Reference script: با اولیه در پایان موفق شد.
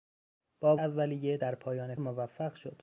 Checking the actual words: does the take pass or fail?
pass